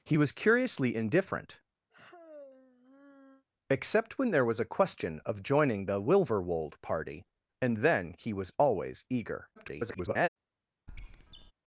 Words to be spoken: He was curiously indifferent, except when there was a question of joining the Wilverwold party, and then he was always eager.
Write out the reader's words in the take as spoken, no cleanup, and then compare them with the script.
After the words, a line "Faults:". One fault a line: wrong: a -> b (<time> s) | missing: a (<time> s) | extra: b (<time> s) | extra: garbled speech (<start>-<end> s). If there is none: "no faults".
He was curiously indifferent, except when there was a question of joining the Wilverwold party, and then he was always eager. [garbled]
Faults:
extra: garbled speech (9.6-10.3 s)